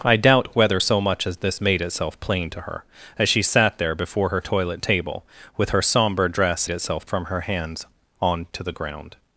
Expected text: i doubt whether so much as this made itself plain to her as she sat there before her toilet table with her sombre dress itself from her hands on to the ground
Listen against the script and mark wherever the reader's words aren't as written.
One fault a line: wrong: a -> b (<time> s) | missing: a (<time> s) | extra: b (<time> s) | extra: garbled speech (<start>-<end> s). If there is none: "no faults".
no faults